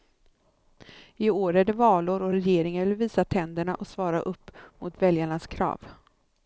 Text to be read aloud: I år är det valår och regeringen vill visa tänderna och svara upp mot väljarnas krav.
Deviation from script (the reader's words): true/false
false